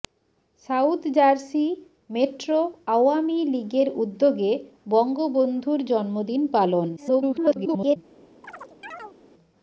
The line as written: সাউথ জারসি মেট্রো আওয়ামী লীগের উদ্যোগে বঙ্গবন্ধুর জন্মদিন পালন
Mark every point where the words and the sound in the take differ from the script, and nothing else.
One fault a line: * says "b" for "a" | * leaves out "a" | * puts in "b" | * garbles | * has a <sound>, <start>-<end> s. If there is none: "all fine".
* garbles
* has a chirp, 8.4-9.2 s